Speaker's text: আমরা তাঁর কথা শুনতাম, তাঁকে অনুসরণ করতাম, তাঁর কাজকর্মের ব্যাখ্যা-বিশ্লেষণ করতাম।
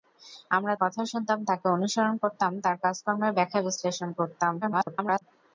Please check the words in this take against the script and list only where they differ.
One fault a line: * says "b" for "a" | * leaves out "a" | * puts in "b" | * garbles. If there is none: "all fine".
* leaves out "তাঁর"
* garbles